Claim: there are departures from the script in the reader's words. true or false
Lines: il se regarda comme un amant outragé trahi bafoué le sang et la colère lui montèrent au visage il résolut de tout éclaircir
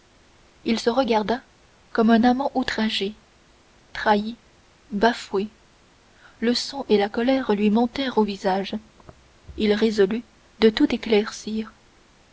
false